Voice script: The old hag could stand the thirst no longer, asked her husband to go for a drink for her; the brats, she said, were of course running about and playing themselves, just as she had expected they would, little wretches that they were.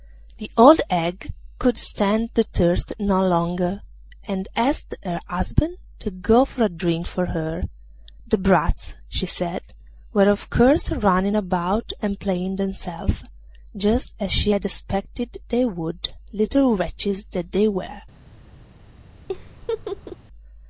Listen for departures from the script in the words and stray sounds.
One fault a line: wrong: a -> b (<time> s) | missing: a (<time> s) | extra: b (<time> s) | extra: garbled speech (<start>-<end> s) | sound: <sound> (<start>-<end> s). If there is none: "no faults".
extra: and (4.3 s)
sound: laugh (19.3-20.2 s)